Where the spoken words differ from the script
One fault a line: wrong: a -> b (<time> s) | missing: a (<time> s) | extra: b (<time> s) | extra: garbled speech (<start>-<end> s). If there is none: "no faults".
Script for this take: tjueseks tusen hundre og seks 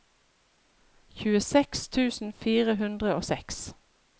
extra: fire (2.5 s)